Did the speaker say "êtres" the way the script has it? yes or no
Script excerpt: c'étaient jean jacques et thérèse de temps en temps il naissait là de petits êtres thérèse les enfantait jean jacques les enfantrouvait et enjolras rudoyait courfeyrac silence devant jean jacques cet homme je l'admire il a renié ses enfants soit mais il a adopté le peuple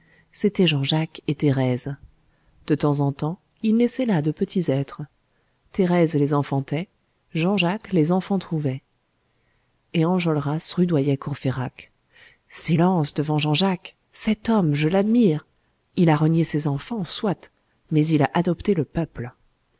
yes